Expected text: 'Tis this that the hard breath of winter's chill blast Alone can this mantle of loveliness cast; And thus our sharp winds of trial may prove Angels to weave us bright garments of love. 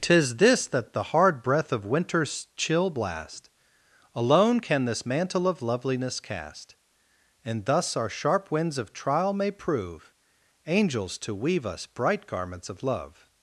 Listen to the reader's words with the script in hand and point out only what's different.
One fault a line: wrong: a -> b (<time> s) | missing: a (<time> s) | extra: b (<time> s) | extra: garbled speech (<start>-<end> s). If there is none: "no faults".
no faults